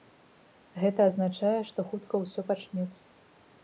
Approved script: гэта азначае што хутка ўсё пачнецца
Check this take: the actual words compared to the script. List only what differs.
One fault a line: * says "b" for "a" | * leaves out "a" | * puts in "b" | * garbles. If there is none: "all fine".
all fine